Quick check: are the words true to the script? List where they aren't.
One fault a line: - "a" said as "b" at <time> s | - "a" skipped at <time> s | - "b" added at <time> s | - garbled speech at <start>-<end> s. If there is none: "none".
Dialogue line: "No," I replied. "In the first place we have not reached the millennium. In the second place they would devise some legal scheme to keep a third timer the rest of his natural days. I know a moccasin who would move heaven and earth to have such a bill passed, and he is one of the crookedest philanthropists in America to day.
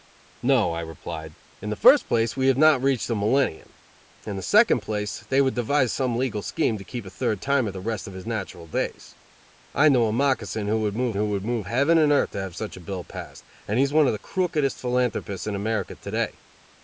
- "who would move" added at 11.1 s